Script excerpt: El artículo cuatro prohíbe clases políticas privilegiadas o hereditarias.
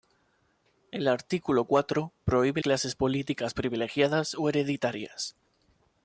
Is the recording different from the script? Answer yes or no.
no